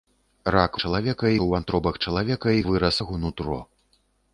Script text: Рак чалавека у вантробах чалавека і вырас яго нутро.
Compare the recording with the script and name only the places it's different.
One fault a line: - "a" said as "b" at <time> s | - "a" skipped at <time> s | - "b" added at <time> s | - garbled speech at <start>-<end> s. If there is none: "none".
none